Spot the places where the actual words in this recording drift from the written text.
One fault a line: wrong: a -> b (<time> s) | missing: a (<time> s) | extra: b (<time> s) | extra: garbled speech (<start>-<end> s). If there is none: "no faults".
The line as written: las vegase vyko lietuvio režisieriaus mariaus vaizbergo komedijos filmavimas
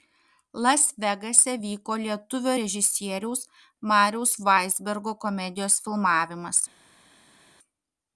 no faults